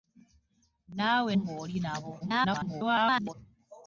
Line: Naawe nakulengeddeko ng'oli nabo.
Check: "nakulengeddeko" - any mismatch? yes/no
yes